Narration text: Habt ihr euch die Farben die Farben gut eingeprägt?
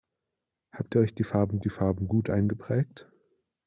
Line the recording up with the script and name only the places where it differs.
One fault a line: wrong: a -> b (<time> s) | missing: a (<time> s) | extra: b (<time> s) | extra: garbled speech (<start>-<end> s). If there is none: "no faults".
no faults